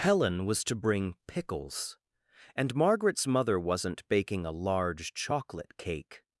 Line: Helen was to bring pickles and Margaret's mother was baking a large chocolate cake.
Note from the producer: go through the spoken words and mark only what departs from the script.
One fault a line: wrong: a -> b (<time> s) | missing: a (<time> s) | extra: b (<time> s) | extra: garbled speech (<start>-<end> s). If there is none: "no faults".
wrong: was -> wasn't (3.6 s)